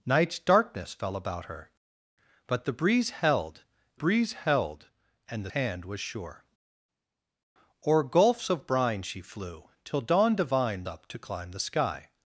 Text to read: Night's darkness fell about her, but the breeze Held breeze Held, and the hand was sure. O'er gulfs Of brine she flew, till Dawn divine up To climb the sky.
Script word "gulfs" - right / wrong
right